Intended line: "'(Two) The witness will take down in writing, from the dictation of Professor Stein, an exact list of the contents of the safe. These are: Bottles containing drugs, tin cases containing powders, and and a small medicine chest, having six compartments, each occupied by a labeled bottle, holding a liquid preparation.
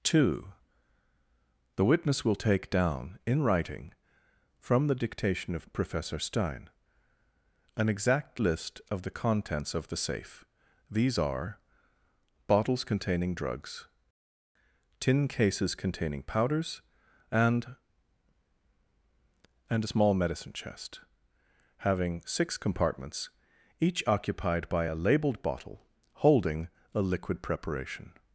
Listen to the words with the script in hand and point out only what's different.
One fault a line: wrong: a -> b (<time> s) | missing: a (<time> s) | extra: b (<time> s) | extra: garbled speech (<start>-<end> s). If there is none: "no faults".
no faults